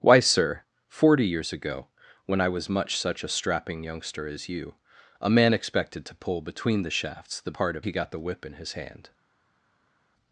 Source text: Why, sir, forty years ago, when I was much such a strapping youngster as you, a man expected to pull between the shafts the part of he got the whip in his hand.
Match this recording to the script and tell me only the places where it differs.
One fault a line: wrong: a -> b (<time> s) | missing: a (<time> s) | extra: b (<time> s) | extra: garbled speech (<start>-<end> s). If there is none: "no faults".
no faults